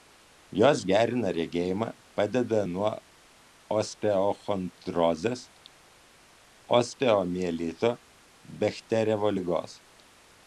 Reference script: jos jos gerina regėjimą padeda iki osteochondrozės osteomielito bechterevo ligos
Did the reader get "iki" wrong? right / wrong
wrong